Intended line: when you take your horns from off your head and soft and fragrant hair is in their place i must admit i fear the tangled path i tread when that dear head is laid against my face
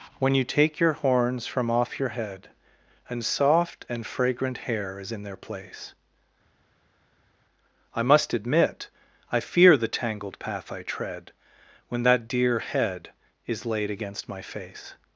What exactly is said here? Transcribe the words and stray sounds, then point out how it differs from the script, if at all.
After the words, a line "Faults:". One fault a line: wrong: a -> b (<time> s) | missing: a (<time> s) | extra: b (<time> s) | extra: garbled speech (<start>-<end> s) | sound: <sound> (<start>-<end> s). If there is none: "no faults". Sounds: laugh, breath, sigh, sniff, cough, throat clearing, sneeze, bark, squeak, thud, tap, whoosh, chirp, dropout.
when you take your horns from off your head and soft and fragrant hair is in their place i must admit i fear the tangled path i tread when that dear head is laid against my face
Faults:
no faults